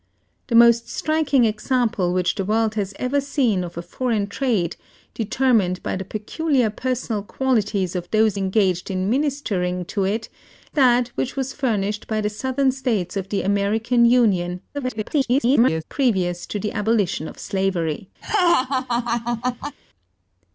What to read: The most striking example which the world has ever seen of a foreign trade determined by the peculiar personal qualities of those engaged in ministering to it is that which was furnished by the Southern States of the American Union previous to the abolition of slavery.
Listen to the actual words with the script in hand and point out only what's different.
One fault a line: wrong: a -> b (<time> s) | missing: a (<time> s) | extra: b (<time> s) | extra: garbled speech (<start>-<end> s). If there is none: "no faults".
missing: is (10.3 s)
extra: garbled speech (14.7-15.8 s)